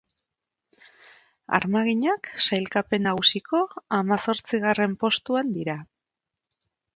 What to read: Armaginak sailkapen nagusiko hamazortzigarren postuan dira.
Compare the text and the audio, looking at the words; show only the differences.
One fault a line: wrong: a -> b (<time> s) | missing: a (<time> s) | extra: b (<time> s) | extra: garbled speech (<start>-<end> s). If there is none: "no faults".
no faults